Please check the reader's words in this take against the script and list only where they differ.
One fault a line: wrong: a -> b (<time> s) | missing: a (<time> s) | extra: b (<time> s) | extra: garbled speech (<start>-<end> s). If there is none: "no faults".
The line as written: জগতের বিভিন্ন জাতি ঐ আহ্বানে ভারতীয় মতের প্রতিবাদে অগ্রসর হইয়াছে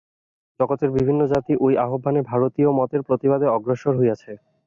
no faults